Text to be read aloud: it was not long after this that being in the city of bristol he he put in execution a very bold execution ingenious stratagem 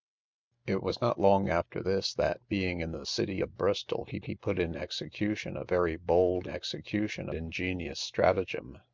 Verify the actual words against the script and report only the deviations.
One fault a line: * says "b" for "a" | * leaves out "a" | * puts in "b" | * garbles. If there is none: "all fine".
all fine